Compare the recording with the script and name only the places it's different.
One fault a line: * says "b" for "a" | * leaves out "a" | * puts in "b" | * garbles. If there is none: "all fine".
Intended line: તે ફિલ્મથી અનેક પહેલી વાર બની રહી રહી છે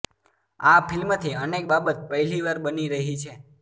* says "આ" for "તે"
* puts in "બાબત"
* leaves out "રહી"